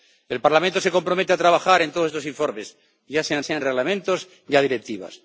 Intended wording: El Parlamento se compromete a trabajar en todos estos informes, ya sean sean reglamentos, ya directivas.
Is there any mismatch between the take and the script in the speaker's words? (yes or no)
no